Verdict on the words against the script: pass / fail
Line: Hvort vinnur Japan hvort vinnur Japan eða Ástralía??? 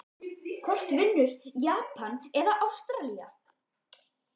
fail